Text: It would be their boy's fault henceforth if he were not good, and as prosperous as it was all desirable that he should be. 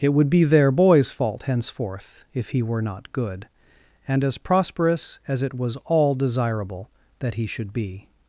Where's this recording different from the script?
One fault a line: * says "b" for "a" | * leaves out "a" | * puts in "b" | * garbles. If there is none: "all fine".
all fine